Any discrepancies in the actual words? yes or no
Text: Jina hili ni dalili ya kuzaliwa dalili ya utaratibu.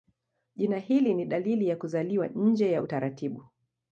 yes